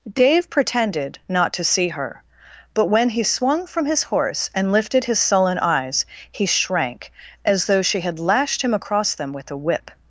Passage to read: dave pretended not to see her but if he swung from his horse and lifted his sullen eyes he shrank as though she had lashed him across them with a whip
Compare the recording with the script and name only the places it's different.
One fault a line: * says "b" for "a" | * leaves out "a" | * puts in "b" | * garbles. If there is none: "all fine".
* says "when" for "if"